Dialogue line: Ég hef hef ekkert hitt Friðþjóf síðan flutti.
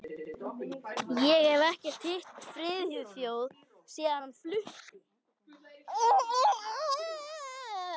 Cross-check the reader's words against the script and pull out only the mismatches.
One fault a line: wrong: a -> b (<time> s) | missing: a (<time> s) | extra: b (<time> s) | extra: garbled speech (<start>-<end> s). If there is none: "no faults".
missing: hef (1.6 s)
extra: hann (4.2 s)